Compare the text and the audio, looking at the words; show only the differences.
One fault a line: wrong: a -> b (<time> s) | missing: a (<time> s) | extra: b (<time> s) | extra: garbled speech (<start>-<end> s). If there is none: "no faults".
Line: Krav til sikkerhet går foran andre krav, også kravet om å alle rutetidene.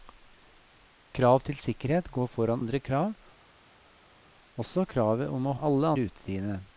no faults